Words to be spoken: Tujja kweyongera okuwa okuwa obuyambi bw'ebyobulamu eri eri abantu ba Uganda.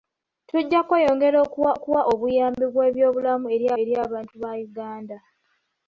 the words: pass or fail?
pass